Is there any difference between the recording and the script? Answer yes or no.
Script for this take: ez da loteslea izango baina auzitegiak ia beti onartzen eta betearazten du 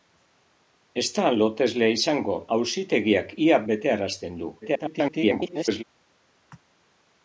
yes